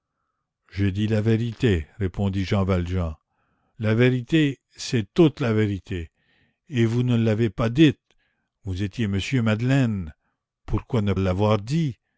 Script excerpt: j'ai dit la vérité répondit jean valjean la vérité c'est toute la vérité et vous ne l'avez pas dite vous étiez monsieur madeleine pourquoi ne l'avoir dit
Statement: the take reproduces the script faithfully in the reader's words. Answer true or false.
true